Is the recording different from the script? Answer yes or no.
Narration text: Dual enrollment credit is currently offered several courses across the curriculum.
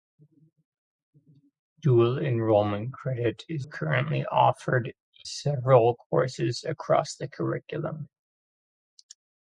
no